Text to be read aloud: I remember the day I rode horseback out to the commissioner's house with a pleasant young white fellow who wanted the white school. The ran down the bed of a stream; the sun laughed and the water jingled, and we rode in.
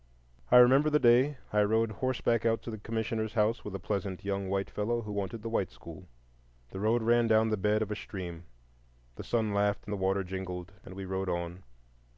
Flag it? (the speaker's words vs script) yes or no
yes